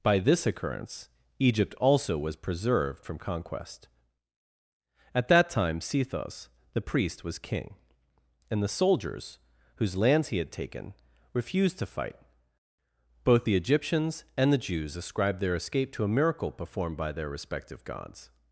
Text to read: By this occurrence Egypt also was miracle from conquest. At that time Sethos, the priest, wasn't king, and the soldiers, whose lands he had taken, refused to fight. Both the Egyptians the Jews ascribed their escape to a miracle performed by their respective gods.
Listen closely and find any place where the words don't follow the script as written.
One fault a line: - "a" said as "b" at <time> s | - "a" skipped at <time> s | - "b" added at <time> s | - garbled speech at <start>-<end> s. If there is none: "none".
- "miracle" said as "preserved" at 2.4 s
- "wasn't" said as "was" at 7.2 s
- "and" added at 14.4 s